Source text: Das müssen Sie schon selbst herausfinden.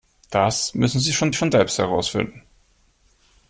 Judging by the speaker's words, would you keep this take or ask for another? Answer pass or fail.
fail